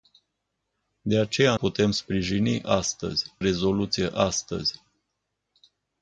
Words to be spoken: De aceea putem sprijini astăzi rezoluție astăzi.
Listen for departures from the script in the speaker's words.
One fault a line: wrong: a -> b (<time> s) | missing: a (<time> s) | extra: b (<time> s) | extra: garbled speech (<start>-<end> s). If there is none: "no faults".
no faults